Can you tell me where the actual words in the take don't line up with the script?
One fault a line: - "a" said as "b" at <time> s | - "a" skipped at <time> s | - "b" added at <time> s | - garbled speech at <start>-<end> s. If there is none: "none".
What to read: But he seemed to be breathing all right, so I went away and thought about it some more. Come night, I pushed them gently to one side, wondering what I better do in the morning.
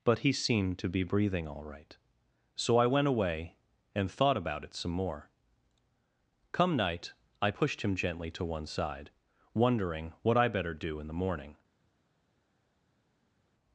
- "them" said as "him" at 7.8 s